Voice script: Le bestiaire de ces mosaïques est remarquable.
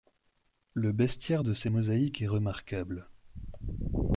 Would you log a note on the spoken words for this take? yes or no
no